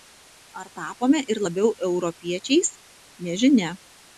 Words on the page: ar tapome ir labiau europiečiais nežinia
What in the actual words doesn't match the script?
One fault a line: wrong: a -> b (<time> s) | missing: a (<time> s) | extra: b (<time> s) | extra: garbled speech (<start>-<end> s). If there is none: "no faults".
no faults